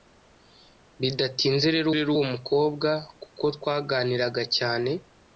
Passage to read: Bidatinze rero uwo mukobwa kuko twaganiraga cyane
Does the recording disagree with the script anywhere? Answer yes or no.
yes